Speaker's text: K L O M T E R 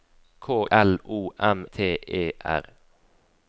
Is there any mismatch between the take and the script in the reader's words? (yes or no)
no